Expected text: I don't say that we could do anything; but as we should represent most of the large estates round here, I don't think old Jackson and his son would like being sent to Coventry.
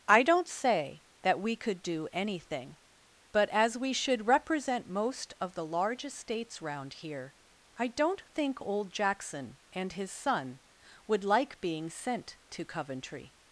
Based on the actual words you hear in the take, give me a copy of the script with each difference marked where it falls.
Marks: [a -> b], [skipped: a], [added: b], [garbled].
I don't say that we could do anything; but as we should represent most of the large estates round here, I don't think old Jackson and his son would like being sent to Coventry.